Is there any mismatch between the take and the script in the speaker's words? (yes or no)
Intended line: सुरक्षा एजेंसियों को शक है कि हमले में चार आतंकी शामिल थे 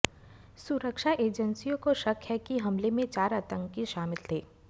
no